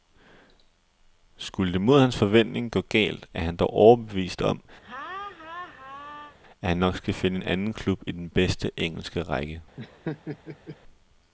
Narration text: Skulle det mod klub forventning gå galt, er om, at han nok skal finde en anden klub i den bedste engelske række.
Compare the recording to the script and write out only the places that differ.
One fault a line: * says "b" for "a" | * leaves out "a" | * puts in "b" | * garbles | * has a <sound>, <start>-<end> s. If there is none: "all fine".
* says "hans" for "klub"
* puts in "han dog overbevist"
* has a laugh, 4.8-6.4 s
* has a laugh, 9.8-10.8 s